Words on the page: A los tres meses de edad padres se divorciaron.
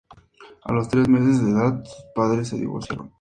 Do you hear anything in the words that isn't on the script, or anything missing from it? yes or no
yes